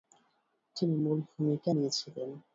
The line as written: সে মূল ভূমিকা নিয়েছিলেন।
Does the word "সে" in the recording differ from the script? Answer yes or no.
yes